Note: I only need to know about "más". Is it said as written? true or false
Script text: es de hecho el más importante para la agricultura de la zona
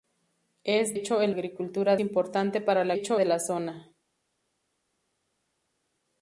false